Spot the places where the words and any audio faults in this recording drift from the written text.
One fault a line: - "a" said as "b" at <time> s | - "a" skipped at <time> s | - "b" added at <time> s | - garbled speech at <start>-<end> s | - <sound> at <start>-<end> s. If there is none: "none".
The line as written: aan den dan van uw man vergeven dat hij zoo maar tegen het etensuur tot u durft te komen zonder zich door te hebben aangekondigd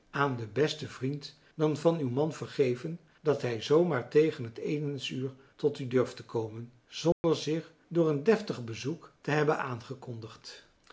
- "besten vriend" added at 0.5 s
- dropout at 7.1-7.2 s
- "een deftig bezoek" added at 8.1 s